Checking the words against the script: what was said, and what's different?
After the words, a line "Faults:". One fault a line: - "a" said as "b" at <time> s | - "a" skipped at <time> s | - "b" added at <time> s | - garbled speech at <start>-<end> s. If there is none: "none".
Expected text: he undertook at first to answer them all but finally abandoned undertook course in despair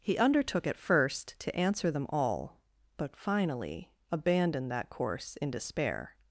he undertook at first to answer them all but finally abandoned that course in despair
Faults:
- "undertook" said as "that" at 4.7 s